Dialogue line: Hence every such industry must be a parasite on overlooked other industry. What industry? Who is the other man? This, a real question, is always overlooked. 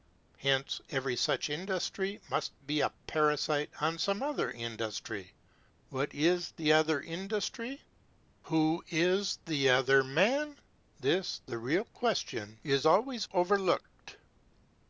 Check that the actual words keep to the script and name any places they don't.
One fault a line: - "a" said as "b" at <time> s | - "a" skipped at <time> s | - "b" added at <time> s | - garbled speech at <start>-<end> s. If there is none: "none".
- "overlooked" said as "some" at 4.0 s
- "is the other" added at 6.2 s
- "a" said as "the" at 11.4 s